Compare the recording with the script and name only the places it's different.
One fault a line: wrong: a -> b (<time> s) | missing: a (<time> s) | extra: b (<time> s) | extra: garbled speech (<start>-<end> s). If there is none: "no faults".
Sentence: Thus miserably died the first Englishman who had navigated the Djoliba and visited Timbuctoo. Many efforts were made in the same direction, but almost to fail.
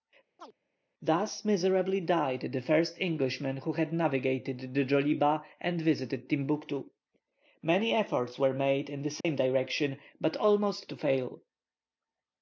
no faults